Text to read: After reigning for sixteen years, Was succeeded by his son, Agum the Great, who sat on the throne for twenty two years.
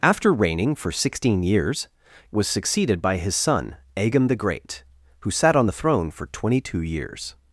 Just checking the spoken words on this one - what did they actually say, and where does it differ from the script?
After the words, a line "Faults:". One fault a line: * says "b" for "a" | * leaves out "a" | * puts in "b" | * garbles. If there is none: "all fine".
After reigning for sixteen years, Was succeeded by his son, Agum the Great, who sat on the throne for twenty two years.
Faults:
all fine